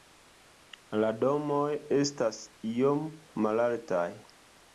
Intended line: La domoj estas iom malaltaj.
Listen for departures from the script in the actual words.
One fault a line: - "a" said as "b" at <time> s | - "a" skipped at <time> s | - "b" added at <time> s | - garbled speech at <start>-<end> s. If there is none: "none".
none